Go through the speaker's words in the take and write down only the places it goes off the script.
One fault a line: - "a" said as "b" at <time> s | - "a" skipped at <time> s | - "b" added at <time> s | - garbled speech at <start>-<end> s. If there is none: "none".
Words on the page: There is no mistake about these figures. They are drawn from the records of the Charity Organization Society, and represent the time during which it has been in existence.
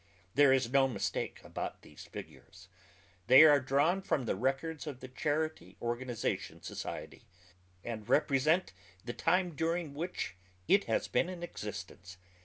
none